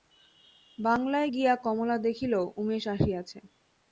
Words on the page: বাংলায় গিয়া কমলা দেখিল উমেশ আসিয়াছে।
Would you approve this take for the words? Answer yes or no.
yes